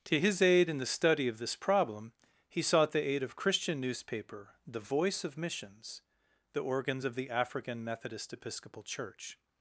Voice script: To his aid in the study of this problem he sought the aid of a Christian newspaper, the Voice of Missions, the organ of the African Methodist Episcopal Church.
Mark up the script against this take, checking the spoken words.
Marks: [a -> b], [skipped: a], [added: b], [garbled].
To his aid in the study of this problem he sought the aid of [skipped: a] Christian newspaper, the Voice of Missions, the [organ -> organs] of the African Methodist Episcopal Church.